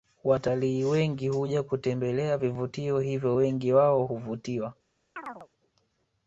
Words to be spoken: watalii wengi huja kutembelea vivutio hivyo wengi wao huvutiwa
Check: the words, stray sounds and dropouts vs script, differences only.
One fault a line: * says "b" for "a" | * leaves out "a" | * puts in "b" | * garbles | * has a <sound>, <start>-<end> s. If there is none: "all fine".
* has a chirp, 5.2-5.5 s